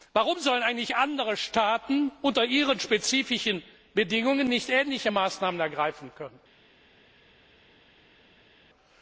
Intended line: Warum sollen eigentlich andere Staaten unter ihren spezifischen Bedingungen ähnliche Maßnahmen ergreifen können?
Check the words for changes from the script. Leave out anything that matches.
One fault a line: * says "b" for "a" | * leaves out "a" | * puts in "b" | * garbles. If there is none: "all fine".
* puts in "nicht"